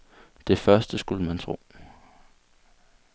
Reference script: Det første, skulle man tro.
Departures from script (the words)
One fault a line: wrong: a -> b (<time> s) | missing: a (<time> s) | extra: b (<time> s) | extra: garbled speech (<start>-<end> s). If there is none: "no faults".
no faults